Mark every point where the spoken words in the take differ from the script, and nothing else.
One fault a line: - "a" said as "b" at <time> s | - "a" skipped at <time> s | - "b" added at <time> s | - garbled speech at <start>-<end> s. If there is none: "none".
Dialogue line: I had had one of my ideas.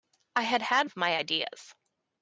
- "one" skipped at 0.9 s